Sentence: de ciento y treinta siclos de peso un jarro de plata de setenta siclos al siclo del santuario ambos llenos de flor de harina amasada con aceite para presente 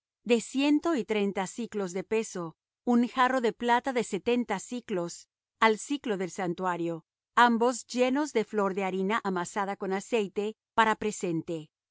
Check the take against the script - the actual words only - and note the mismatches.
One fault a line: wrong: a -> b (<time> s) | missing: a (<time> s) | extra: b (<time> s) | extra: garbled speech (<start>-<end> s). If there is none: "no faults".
no faults